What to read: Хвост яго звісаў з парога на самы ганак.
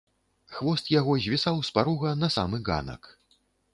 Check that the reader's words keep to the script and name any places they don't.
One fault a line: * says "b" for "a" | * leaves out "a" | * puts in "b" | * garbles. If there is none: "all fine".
all fine